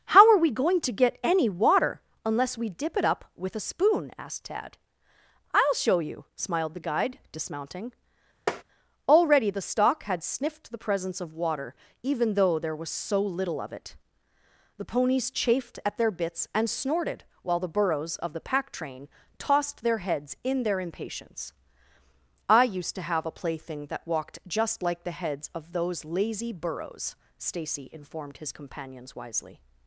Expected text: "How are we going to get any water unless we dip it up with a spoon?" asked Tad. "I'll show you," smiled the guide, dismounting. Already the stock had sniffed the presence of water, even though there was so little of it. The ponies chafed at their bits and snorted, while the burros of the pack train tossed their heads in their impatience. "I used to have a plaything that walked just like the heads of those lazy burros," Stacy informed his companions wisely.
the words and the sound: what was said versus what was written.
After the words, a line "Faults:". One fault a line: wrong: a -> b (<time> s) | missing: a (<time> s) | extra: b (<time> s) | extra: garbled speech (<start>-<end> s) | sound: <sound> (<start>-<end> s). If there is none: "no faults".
"How are we going to get any water unless we dip it up with a spoon?" asked Tad. "I'll show you," smiled the guide, dismounting. Already the stock had sniffed the presence of water, even though there was so little of it. The ponies chafed at their bits and snorted, while the burros of the pack train tossed their heads in their impatience. "I used to have a plaything that walked just like the heads of those lazy burros," Stacy informed his companions wisely.
Faults:
sound: tap (8.5-8.6 s)